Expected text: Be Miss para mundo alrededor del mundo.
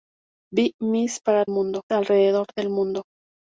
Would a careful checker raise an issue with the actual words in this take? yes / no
no